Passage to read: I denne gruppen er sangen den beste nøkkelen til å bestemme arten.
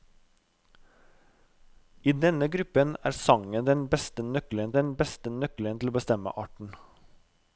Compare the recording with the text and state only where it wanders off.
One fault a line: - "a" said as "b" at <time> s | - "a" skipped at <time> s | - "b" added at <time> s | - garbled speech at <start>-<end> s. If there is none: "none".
- "den beste nøkkelen" added at 4.7 s